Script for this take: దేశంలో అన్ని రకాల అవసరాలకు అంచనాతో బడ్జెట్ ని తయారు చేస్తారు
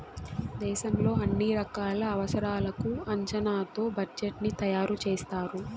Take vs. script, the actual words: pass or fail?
pass